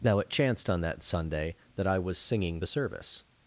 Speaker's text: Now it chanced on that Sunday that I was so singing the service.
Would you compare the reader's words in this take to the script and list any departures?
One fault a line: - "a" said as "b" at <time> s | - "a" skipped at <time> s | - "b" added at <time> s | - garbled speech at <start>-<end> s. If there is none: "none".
- "so" skipped at 2.2 s